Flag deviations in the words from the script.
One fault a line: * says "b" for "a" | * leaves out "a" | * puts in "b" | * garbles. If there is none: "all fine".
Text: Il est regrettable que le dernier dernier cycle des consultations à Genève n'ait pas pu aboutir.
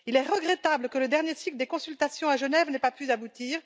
* leaves out "dernier"